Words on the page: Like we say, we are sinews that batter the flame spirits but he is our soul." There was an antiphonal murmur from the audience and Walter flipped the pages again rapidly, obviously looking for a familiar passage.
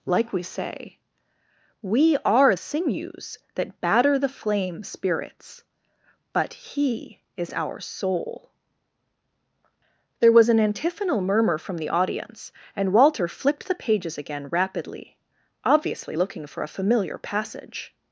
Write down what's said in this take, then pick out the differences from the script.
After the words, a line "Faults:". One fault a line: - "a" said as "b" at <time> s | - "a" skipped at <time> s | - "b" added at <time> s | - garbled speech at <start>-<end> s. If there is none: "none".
Like we say, we are sinews that batter the flame spirits but he is our soul." There was an antiphonal murmur from the audience and Walter flipped the pages again rapidly, obviously looking for a familiar passage.
Faults:
none